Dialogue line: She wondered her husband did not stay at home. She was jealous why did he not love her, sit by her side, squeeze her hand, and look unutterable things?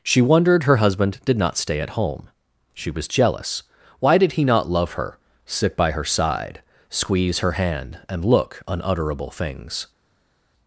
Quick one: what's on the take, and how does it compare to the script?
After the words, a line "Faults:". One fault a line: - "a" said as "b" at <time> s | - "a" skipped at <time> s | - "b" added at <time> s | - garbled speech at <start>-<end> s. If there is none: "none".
She wondered her husband did not stay at home. She was jealous why did he not love her, sit by her side, squeeze her hand, and look unutterable things?
Faults:
none